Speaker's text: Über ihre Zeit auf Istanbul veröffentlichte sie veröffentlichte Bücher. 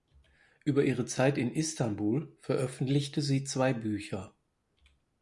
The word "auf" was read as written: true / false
false